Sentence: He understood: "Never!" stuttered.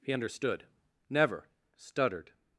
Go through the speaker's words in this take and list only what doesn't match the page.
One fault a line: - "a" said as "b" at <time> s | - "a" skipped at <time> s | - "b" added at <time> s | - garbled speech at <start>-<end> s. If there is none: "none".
none